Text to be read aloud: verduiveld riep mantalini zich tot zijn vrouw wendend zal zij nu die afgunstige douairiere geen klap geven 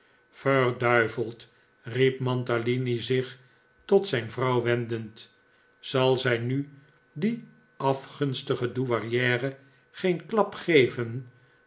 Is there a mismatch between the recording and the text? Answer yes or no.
no